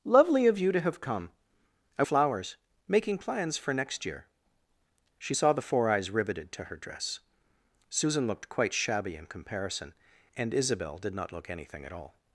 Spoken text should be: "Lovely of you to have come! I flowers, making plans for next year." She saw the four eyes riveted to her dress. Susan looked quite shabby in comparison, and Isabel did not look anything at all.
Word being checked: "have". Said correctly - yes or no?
yes